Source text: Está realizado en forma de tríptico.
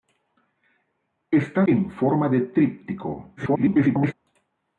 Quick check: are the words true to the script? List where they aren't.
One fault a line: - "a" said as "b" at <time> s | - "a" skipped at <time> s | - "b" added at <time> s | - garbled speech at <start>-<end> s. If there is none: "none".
- "realizado" skipped at 1.6 s
- garbled speech at 3.4-4.1 s